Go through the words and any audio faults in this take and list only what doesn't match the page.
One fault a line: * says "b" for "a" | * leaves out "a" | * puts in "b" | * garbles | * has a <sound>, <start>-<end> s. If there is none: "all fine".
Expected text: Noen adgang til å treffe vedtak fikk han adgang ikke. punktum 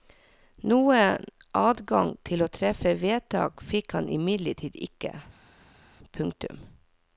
* says "imidlertid" for "adgang"